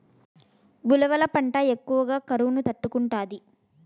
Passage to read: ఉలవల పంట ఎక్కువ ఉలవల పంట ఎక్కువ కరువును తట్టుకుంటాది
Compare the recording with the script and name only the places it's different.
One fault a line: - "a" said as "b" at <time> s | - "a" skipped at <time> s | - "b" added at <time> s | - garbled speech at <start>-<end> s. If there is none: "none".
- "ఉలవల పంట ఎక్కువ" skipped at 2.0 s